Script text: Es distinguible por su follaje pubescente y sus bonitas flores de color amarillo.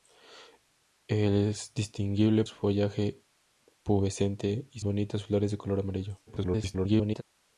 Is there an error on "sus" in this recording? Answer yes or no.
yes